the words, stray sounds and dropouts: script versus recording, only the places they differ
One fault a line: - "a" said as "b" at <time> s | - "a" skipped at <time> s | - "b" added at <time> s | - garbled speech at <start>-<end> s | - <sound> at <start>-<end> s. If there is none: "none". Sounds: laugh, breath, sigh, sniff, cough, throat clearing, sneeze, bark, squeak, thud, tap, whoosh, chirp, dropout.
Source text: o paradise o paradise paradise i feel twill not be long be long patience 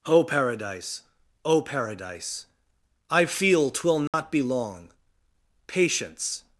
- "paradise" skipped at 2.5 s
- dropout at 4.1-4.1 s
- "be long" skipped at 4.9 s